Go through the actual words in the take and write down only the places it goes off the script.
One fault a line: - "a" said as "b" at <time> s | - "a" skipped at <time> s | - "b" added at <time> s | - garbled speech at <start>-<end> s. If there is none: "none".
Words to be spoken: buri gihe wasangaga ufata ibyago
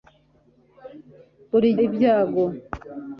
- "gihe wasangaga ufata" skipped at 1.7 s